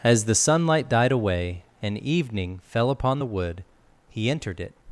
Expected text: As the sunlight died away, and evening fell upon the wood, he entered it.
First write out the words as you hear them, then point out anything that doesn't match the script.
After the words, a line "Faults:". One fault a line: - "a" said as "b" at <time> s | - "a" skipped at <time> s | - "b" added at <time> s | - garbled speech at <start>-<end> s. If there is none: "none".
As the sunlight died away, and evening fell upon the wood, he entered it.
Faults:
none